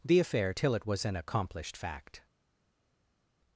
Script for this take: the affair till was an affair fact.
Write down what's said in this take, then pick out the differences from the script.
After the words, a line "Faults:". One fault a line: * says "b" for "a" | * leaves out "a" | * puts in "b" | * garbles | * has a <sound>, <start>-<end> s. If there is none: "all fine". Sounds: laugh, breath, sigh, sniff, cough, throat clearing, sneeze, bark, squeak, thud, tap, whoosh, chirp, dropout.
the affair till it was an accomplished fact.
Faults:
* puts in "it"
* says "accomplished" for "affair"